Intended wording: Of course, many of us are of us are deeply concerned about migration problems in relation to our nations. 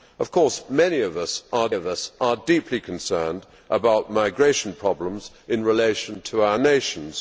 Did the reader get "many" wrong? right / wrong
right